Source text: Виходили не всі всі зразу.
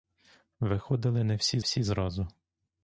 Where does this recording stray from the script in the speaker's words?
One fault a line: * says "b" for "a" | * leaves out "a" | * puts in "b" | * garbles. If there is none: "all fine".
all fine